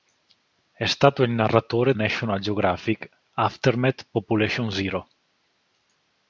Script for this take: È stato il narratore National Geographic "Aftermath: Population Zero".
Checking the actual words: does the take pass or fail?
pass